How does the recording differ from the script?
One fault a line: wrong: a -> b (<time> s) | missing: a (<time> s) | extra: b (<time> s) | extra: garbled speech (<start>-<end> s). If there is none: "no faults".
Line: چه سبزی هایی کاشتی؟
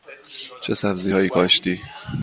no faults